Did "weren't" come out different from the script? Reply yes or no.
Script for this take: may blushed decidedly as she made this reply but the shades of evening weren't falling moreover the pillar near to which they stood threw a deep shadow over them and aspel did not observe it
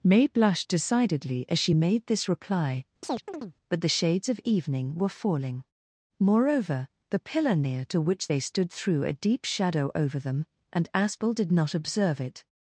yes